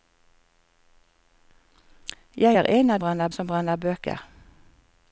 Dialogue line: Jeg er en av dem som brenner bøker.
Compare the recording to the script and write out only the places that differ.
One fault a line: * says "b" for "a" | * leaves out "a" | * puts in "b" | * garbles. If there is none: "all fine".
* says "brenner" for "dem"